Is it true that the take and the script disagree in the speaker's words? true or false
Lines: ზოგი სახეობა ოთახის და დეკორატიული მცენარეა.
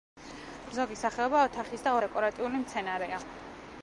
false